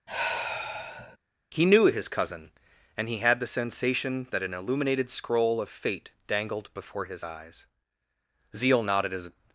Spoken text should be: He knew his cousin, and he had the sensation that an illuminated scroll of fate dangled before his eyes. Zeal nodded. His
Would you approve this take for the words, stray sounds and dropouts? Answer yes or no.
no